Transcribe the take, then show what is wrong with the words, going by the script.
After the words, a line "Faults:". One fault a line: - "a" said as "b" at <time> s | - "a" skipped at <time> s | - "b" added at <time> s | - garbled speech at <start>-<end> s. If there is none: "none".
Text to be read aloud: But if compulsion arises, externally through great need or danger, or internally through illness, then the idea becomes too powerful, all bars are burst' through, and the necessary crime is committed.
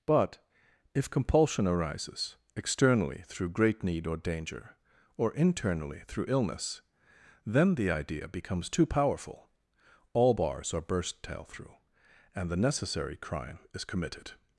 But if compulsion arises, externally through great need or danger, or internally through illness, then the idea becomes too powerful, all bars are burst' tail through, and the necessary crime is committed.
Faults:
- "tail" added at 11.2 s